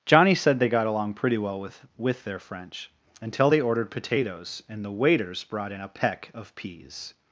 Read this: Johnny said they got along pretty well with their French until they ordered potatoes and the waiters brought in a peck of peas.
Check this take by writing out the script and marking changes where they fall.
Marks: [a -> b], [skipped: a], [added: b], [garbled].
Johnny said they got along pretty well with [added: with] their French until they ordered potatoes and the waiters brought in a peck of peas.